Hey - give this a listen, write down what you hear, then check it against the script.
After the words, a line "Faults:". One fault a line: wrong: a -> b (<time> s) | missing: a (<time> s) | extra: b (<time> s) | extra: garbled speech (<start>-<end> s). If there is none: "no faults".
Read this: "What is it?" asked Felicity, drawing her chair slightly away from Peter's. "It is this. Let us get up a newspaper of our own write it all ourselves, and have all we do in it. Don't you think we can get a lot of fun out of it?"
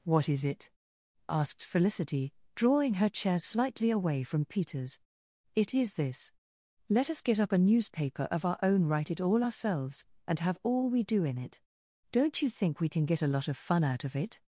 "What is it?" asked Felicity, drawing her chair slightly away from Peter's. "It is this. Let us get up a newspaper of our own write it all ourselves, and have all we do in it. Don't you think we can get a lot of fun out of it?"
Faults:
no faults